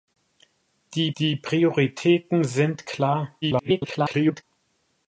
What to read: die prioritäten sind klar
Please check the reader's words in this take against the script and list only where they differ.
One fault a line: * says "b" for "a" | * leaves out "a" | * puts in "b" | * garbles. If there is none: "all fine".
* puts in "die"
* garbles